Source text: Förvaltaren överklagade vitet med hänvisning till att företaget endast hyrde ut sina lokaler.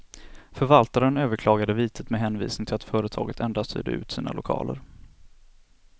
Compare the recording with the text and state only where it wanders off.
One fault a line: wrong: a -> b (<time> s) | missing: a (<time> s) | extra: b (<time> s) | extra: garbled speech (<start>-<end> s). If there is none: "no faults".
no faults